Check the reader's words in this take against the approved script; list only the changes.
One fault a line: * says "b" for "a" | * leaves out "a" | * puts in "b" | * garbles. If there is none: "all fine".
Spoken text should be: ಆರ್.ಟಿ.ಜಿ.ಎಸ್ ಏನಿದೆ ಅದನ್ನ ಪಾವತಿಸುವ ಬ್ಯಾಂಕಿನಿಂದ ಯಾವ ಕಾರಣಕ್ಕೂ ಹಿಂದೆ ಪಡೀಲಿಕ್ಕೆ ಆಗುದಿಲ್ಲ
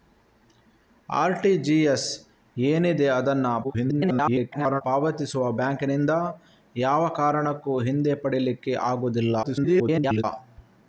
* garbles
* garbles